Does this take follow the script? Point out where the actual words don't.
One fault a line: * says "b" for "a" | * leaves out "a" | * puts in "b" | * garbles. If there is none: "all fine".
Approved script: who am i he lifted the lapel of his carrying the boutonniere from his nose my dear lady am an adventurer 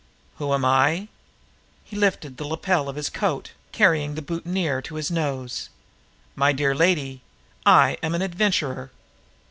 * puts in "coat"
* says "to" for "from"
* puts in "i"